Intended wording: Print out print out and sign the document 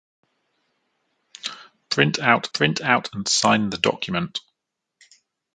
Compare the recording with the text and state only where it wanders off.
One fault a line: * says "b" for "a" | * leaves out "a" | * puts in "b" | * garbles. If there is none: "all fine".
all fine